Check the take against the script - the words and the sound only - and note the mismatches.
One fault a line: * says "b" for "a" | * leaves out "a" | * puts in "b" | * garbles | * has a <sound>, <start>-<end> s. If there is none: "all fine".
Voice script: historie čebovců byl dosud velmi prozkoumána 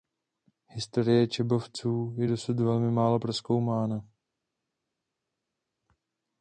* says "je" for "byl"
* puts in "málo"